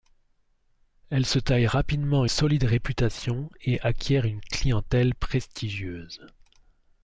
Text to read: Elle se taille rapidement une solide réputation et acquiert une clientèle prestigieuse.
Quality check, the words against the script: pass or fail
fail